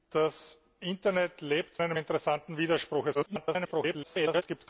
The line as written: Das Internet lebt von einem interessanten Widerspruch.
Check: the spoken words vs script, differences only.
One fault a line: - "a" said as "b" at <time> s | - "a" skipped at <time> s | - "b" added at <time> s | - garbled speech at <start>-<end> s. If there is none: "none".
- "von" skipped at 1.8 s
- garbled speech at 3.1-4.4 s